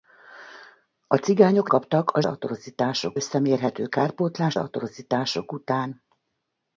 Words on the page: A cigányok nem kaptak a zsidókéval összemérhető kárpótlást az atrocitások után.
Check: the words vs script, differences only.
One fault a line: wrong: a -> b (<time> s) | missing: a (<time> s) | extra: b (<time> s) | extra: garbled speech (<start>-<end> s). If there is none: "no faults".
missing: nem (1.7 s)
wrong: zsidókéval -> atrocitások (2.3 s)
missing: az (4.6 s)